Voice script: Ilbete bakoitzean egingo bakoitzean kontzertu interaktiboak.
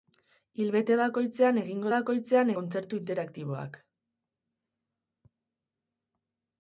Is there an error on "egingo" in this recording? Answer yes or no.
no